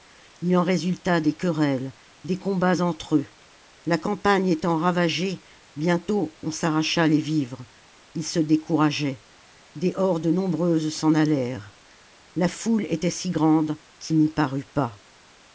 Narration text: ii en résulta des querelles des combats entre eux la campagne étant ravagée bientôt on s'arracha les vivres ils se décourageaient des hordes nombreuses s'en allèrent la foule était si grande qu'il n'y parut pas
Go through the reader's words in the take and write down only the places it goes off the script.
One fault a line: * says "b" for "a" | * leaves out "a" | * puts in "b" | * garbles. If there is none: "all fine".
all fine